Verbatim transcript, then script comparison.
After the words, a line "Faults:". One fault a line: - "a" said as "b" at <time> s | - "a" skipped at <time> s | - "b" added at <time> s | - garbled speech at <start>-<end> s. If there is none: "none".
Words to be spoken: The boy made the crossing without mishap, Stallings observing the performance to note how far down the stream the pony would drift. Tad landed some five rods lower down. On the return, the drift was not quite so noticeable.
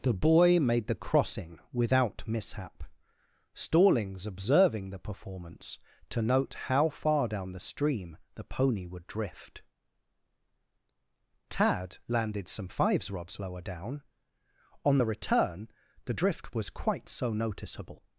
The boy made the crossing without mishap, Stallings observing the performance to note how far down the stream the pony would drift. Tad landed some fives rods lower down. On the return, the drift was quite so noticeable.
Faults:
- "five" said as "fives" at 12.7 s
- "not" skipped at 16.7 s